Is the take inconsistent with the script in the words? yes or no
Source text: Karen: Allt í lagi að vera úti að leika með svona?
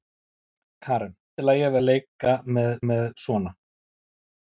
yes